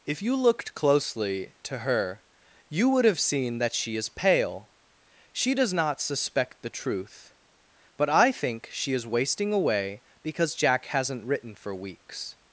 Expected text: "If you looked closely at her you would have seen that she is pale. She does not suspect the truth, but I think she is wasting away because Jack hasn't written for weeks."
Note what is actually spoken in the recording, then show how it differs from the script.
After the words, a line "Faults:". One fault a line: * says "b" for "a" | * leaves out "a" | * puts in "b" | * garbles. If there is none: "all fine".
"If you looked closely to her you would have seen that she is pale. She does not suspect the truth, but I think she is wasting away because Jack hasn't written for weeks."
Faults:
* says "to" for "at"